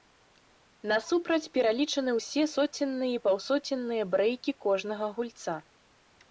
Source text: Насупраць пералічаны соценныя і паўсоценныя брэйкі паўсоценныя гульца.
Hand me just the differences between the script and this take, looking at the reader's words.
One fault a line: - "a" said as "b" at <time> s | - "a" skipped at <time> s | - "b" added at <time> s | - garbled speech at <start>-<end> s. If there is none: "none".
- "ўсе" added at 2.2 s
- "паўсоценныя" said as "кожнага" at 4.7 s